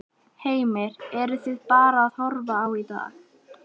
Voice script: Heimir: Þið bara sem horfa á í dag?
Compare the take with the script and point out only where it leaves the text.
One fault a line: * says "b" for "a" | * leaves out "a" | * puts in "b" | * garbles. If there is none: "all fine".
* puts in "Eruð"
* says "að" for "sem"